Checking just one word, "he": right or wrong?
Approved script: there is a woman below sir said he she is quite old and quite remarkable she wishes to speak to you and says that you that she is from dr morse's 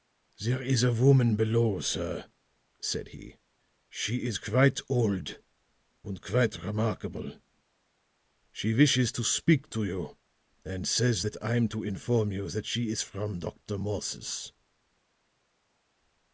right